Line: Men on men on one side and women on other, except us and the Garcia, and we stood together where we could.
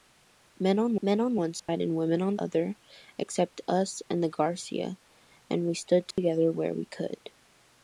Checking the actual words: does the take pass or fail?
pass